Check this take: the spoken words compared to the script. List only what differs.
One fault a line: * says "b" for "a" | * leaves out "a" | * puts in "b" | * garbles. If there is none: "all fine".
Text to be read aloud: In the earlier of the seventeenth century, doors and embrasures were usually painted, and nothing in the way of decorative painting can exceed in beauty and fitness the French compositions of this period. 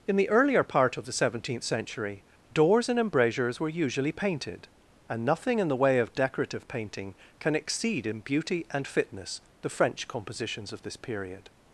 * puts in "part"